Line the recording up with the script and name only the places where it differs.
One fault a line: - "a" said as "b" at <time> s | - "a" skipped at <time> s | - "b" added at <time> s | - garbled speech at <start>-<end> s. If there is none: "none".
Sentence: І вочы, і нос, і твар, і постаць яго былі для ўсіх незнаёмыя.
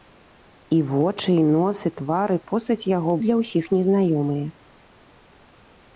- "былі" skipped at 3.1 s